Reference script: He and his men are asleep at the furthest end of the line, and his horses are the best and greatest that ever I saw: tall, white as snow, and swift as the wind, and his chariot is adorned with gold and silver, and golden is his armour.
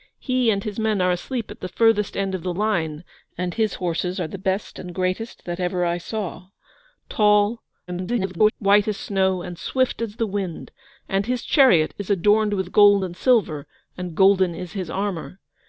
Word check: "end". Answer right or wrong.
right